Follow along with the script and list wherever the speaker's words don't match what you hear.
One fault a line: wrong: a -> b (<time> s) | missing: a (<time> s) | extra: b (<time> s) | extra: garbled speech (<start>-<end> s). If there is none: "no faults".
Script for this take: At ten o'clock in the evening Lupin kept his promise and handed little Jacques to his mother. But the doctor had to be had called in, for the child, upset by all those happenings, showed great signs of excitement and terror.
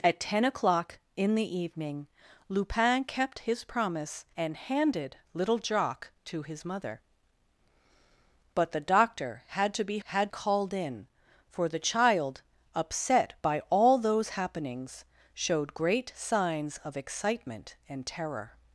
no faults